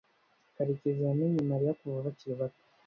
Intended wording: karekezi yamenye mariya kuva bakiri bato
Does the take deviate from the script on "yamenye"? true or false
false